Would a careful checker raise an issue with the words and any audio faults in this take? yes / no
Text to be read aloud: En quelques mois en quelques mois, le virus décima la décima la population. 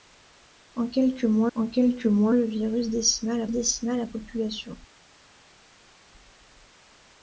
no